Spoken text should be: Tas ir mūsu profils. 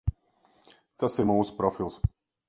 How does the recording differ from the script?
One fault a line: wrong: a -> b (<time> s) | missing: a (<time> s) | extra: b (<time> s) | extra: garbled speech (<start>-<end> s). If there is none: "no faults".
no faults